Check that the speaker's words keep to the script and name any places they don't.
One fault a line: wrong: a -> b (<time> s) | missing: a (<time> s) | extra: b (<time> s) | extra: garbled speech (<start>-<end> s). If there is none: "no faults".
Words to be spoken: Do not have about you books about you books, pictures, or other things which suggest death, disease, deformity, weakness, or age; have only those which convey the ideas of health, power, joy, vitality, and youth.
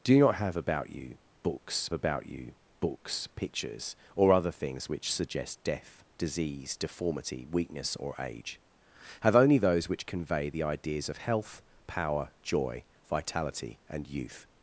no faults